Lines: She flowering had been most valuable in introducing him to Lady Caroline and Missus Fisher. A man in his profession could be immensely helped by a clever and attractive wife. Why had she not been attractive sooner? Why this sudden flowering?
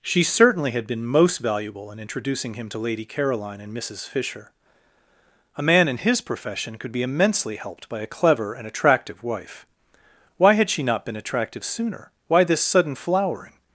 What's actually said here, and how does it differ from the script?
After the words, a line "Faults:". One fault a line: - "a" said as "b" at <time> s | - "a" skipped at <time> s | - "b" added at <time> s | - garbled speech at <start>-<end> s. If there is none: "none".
She certainly had been most valuable in introducing him to Lady Caroline and Missus Fisher. A man in his profession could be immensely helped by a clever and attractive wife. Why had she not been attractive sooner? Why this sudden flowering?
Faults:
- "flowering" said as "certainly" at 0.2 s